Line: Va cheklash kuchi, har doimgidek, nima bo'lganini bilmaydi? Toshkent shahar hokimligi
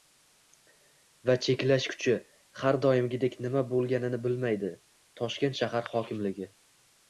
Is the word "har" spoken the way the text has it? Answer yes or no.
yes